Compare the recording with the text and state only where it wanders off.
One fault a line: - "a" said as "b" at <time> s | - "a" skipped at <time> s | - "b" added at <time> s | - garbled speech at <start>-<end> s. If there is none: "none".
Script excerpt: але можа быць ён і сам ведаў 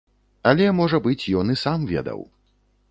none